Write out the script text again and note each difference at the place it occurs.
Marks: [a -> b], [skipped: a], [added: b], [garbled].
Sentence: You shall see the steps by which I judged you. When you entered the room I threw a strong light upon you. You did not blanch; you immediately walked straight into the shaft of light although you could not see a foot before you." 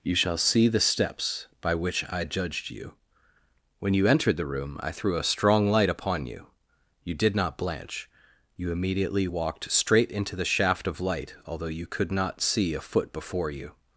You shall see the steps by which I judged you. When you entered the room I threw a strong light upon you. You did not blanch; you immediately walked straight into the shaft of light although you could not see a foot before you."